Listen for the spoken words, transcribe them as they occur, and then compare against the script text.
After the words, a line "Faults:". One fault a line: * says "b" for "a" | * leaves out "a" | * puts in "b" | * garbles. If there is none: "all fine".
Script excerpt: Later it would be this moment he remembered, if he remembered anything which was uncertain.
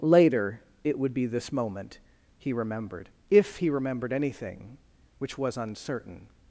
Later it would be this moment he remembered, if he remembered anything which was uncertain.
Faults:
all fine